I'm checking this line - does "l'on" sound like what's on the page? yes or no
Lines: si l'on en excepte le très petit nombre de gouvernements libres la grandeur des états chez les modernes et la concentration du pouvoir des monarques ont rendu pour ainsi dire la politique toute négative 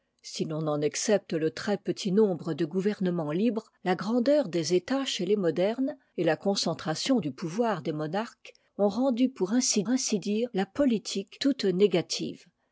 yes